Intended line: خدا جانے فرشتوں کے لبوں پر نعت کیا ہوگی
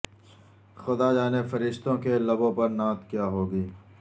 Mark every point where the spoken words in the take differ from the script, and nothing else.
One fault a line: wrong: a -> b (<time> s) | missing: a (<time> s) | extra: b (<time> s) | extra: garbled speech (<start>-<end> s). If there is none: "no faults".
no faults